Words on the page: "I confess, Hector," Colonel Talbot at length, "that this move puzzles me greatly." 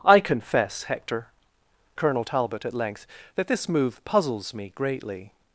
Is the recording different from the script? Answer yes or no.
no